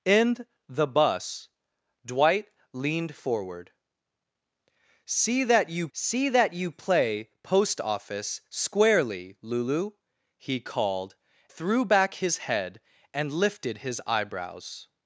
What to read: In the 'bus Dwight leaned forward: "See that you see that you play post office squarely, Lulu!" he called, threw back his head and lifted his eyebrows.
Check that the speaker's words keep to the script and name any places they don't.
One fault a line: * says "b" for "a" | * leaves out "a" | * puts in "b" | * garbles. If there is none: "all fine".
all fine